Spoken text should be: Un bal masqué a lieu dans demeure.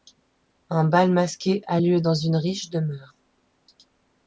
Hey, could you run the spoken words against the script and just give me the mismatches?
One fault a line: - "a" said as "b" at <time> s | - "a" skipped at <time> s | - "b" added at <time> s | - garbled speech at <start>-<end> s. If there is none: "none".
- "une riche" added at 2.1 s